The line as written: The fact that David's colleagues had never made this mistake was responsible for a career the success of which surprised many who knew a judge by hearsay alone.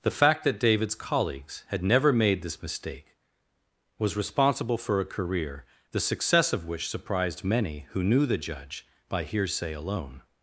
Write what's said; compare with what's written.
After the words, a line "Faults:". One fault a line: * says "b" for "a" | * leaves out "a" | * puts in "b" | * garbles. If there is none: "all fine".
The fact that David's colleagues had never made this mistake was responsible for a career the success of which surprised many who knew the judge by hearsay alone.
Faults:
* says "the" for "a"